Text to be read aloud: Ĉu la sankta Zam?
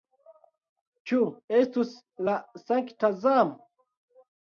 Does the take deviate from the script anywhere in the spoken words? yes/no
yes